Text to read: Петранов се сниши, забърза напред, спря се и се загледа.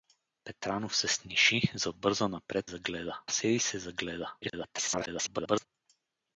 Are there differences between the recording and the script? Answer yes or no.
yes